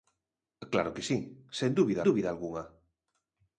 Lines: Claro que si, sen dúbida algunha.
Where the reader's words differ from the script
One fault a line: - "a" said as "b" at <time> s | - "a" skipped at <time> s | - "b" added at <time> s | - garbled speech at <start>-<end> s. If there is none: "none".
- "dúbida" added at 2.1 s